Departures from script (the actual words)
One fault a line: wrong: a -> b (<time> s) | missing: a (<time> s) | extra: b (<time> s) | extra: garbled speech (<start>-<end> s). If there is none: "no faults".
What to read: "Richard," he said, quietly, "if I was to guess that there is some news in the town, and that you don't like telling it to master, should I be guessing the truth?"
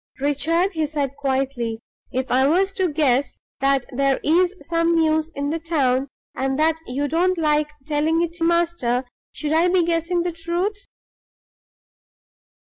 no faults